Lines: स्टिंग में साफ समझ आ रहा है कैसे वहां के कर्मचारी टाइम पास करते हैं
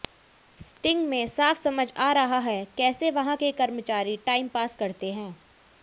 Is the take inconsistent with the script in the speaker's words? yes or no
no